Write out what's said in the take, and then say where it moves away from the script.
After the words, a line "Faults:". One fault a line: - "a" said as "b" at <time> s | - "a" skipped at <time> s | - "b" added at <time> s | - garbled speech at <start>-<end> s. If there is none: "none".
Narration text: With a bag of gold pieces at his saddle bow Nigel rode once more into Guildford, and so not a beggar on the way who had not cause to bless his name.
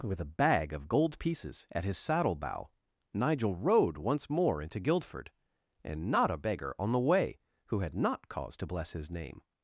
With a bag of gold pieces at his saddle bow Nigel rode once more into Guildford, and not a beggar on the way who had not cause to bless his name.
Faults:
- "so" skipped at 6.1 s